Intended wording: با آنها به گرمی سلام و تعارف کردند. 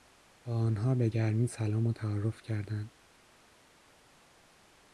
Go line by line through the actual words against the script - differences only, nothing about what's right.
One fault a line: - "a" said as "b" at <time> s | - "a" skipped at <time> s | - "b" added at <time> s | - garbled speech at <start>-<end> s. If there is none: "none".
none